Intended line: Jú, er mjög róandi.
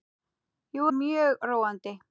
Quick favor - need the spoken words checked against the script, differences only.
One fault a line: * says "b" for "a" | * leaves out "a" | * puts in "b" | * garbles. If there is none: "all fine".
all fine